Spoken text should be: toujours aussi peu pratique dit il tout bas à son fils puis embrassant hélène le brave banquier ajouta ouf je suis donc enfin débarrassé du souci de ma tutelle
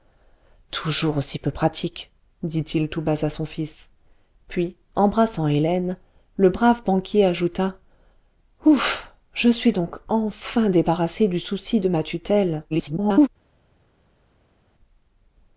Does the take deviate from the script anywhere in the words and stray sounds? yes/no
yes